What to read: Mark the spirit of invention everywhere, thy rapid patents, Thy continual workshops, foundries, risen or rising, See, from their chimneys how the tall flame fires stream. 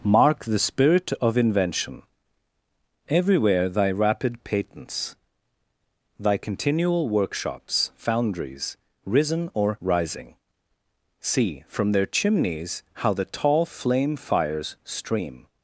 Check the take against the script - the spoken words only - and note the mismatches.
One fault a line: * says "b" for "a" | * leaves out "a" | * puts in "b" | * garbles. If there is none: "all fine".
all fine